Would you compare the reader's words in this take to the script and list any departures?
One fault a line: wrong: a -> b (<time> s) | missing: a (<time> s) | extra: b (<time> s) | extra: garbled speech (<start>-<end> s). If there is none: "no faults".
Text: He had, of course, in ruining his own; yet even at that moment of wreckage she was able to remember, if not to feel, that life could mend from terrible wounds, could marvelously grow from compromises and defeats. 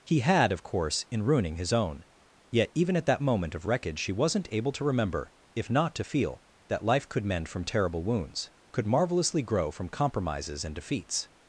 wrong: was -> wasn't (4.1 s)